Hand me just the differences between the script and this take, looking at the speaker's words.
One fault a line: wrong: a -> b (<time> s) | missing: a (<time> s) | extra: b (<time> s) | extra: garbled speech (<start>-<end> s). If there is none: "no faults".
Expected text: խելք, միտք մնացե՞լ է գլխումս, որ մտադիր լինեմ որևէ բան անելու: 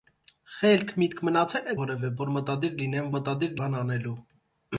wrong: գլխումս -> որևէ (1.8 s)
wrong: որևէ -> մտադիր (3.2 s)